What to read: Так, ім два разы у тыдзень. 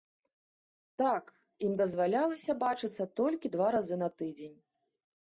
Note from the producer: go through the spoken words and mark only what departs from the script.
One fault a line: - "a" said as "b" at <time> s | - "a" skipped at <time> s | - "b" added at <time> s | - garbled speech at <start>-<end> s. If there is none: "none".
- "дазвалялася бачыцца толькі" added at 1.8 s
- "у" said as "на" at 4.0 s